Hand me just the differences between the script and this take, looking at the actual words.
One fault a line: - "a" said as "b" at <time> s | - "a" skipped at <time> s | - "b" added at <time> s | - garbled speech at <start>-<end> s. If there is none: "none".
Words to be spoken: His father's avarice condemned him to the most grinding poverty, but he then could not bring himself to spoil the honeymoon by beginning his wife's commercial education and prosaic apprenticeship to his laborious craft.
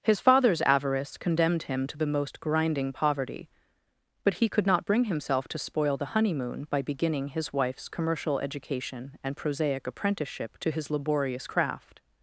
- "then" skipped at 4.5 s